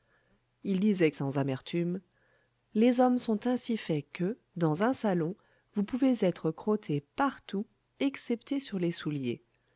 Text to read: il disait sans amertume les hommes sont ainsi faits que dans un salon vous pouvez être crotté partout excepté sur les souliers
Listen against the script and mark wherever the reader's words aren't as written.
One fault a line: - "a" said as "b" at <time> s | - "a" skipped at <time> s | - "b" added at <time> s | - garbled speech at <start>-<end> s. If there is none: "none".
none